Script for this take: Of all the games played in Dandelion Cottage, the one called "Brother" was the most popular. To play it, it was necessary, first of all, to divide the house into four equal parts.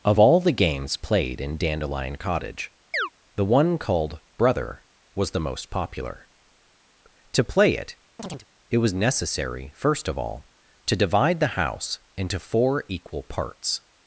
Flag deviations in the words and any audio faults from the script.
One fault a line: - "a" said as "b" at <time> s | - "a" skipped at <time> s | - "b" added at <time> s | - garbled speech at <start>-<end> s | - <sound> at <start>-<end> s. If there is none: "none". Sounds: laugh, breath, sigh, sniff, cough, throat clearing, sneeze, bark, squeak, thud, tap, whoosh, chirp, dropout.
- chirp at 2.9-3.1 s
- chirp at 8.2-8.5 s